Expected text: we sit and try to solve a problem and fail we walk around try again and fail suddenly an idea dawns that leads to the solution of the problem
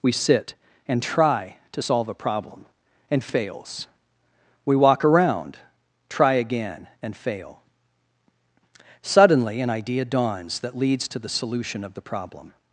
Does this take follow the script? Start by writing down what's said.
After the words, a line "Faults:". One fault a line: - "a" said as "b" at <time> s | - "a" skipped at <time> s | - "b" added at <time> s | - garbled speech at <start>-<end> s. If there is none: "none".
we sit and try to solve a problem and fails we walk around try again and fail suddenly an idea dawns that leads to the solution of the problem
Faults:
- "fail" said as "fails" at 3.2 s